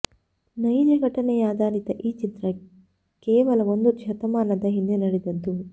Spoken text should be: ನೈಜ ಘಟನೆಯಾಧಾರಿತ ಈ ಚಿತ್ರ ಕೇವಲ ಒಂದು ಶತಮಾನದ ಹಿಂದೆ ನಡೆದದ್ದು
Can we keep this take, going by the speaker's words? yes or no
yes